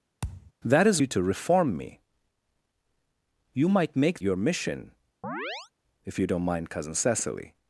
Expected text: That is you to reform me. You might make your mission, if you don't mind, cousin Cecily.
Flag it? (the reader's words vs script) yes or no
no